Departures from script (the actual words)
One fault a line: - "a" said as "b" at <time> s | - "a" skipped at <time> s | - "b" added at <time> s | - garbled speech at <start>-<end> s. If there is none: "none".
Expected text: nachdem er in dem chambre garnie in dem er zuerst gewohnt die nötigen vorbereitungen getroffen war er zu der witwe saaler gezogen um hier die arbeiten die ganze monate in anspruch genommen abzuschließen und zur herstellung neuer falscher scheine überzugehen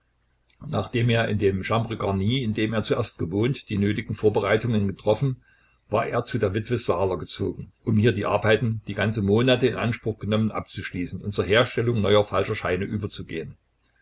none